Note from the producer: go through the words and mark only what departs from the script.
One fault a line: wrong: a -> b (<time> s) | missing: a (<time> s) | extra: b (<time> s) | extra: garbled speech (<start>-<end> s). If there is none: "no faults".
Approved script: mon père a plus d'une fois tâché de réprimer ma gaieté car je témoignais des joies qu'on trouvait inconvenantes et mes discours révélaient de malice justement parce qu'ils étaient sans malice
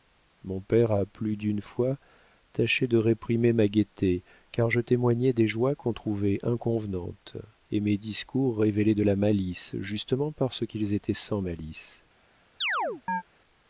extra: la (9.0 s)